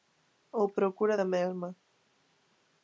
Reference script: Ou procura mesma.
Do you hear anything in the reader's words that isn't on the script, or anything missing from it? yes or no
yes